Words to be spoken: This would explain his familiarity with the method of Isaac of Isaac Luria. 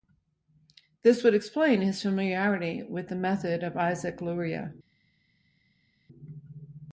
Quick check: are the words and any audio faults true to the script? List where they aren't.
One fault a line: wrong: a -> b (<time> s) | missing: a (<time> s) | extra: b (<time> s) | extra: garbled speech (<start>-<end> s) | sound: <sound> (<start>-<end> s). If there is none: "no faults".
missing: of Isaac (4.2 s)